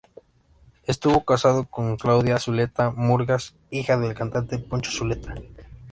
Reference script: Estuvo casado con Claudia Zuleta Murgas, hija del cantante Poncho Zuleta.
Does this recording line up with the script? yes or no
yes